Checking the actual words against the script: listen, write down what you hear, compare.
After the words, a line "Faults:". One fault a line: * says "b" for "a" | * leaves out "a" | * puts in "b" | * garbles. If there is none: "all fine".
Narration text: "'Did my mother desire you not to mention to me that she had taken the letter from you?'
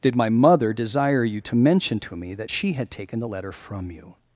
"'Did my mother desire you to mention to me that she had taken the letter from you?'
Faults:
* leaves out "not"